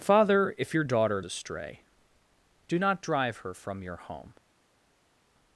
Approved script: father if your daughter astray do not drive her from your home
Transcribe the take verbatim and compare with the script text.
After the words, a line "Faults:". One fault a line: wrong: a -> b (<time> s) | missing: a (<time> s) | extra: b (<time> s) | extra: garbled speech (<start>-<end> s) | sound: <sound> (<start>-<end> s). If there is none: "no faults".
father if your daughter astray do not drive her from your home
Faults:
no faults